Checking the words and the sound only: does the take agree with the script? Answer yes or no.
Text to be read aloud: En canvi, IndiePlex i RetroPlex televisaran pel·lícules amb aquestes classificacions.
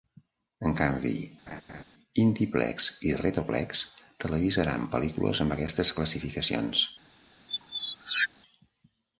no